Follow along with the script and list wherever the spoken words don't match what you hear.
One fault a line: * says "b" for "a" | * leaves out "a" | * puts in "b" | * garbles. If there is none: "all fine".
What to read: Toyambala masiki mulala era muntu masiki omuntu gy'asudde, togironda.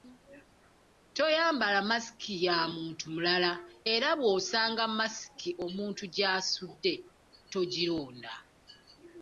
* puts in "ya muntu"
* says "bw'osanga" for "muntu"